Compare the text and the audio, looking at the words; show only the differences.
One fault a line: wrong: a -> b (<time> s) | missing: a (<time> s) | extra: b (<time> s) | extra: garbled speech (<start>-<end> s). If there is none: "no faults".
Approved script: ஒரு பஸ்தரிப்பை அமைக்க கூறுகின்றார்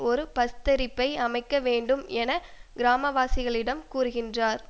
extra: வேண்டும் என கிராமவாசிகளிடம் (1.6 s)